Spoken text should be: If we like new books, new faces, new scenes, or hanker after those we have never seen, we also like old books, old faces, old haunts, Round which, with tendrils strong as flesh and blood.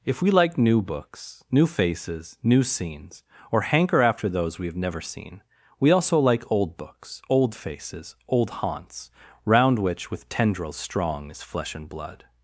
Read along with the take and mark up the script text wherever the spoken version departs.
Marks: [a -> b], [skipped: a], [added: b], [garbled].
If we like new books, new faces, new scenes, or hanker after those we have never seen, we also like old books, old faces, old haunts, Round which, with tendrils strong as flesh and blood.